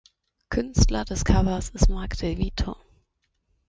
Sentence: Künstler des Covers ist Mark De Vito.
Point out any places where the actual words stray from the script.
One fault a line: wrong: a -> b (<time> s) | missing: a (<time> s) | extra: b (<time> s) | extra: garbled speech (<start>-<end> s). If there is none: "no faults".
no faults